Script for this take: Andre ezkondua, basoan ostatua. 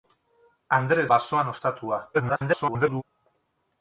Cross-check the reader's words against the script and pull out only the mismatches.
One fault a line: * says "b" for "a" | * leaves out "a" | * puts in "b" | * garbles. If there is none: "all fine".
* leaves out "ezkondua"
* garbles